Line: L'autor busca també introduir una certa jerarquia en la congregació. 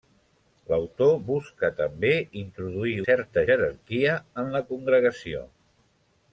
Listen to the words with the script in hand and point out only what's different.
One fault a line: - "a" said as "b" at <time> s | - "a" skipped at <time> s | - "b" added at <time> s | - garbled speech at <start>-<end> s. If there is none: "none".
- "una" skipped at 3.0 s